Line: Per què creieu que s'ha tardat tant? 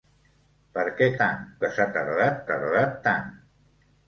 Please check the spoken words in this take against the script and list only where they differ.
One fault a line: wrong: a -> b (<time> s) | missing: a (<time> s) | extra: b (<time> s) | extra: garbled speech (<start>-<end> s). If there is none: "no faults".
wrong: creieu -> tant (1.3 s)
extra: tardat (2.5 s)